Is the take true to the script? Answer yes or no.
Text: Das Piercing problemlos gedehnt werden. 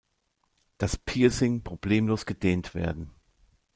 yes